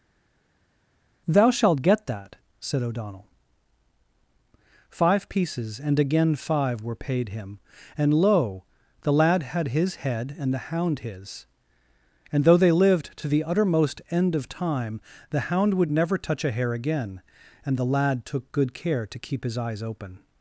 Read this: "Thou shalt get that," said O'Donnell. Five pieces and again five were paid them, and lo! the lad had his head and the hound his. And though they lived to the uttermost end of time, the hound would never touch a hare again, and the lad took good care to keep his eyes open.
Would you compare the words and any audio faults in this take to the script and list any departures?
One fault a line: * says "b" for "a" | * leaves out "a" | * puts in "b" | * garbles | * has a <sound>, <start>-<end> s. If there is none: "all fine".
* says "him" for "them"